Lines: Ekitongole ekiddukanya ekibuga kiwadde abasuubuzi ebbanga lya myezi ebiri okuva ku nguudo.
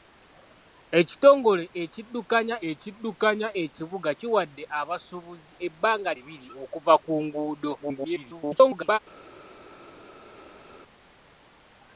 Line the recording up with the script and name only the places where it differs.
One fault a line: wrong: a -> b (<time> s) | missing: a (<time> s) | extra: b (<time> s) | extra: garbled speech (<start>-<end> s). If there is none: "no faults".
extra: ekiddukanya (2.7 s)
missing: lya myezi (6.1 s)
extra: garbled speech (7.8-9.0 s)